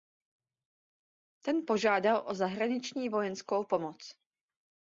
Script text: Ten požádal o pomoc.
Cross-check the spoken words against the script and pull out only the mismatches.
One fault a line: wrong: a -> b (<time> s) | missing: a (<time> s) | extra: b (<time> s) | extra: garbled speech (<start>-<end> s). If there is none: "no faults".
extra: zahraniční vojenskou (2.4 s)